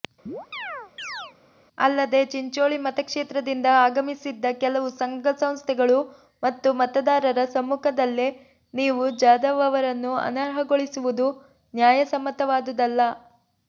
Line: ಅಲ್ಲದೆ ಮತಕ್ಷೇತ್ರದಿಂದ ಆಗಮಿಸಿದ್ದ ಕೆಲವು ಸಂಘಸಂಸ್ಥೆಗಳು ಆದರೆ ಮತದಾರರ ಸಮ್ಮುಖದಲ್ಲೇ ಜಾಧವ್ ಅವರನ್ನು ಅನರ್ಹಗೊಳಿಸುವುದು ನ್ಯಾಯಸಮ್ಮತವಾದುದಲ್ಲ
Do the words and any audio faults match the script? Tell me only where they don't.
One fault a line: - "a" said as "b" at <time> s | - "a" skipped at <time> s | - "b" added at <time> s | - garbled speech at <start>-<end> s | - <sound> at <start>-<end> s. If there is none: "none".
- chirp at 0.3-1.3 s
- "ಚಿಂಚೋಳಿ" added at 2.3 s
- "ಆದರೆ" said as "ಮತ್ತು" at 6.4 s
- "ನೀವು" added at 8.7 s